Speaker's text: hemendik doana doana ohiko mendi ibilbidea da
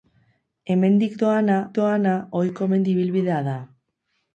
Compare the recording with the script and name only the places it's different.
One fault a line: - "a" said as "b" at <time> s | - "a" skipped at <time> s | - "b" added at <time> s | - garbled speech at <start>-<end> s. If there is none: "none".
none